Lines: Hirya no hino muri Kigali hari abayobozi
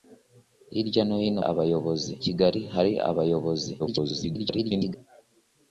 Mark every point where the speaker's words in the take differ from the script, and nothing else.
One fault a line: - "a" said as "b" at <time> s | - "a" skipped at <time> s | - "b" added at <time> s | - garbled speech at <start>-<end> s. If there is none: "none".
- "muri" said as "abayobozi" at 1.5 s
- garbled speech at 3.8-5.0 s